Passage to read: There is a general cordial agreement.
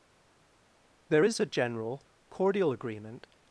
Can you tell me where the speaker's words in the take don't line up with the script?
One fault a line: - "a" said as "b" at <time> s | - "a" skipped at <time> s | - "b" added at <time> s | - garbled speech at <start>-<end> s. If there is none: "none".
none